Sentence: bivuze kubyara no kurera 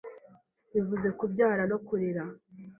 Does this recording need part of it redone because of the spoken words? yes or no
no